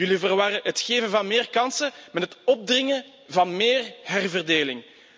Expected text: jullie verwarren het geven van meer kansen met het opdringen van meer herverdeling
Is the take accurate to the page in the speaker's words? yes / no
yes